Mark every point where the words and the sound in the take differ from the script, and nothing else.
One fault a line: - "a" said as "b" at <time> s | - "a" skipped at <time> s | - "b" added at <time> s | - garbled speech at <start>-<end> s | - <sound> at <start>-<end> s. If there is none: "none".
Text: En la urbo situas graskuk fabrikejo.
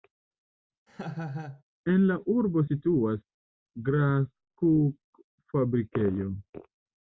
- laugh at 0.9-1.6 s